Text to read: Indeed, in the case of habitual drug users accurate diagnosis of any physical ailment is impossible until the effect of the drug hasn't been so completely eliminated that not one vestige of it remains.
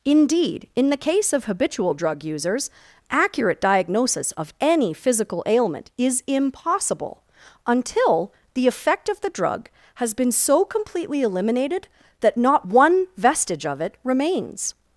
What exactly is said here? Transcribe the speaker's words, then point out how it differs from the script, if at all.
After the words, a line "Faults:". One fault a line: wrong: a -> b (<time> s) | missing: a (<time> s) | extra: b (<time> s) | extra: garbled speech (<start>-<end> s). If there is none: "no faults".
Indeed, in the case of habitual drug users accurate diagnosis of any physical ailment is impossible until the effect of the drug has been so completely eliminated that not one vestige of it remains.
Faults:
wrong: hasn't -> has (10.0 s)